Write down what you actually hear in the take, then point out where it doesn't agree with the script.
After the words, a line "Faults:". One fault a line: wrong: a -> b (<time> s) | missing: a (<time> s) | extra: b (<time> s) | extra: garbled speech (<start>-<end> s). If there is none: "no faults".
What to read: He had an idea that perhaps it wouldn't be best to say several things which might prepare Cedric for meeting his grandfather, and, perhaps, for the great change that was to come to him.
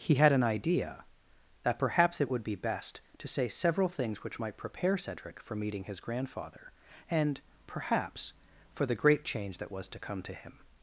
He had an idea that perhaps it would be best to say several things which might prepare Cedric for meeting his grandfather, and, perhaps, for the great change that was to come to him.
Faults:
wrong: wouldn't -> would (2.3 s)